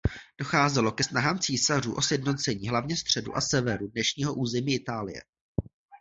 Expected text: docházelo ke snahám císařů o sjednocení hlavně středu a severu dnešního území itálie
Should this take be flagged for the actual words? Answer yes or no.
no